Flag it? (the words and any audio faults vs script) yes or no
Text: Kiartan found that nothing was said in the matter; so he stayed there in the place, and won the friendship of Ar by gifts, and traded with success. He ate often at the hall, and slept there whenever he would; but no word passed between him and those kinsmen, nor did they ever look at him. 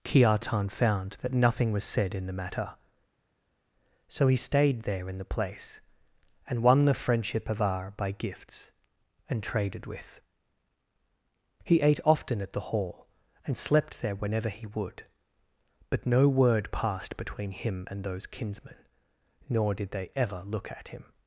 yes